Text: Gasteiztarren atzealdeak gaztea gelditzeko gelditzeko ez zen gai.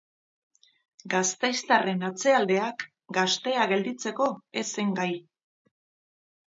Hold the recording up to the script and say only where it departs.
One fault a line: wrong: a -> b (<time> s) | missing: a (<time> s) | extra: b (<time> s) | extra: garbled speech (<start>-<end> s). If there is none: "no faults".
missing: gelditzeko (4.3 s)